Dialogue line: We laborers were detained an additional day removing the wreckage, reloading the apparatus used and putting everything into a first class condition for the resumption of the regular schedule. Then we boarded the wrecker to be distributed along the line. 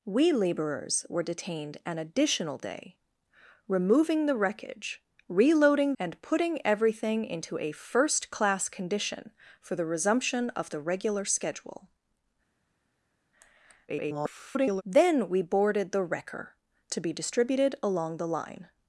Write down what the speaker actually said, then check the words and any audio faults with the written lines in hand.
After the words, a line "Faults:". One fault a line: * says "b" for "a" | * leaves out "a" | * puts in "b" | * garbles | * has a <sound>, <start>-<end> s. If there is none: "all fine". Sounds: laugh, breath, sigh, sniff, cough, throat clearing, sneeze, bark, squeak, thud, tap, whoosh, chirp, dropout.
We laborers were detained an additional day removing the wreckage, reloading and putting everything into a first class condition for the resumption of the regular schedule. [garbled] Then we boarded the wrecker to be distributed along the line.
Faults:
* leaves out "the apparatus used"
* garbles